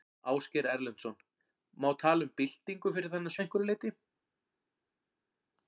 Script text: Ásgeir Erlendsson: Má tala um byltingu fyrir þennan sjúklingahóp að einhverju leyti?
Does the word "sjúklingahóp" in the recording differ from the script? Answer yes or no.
yes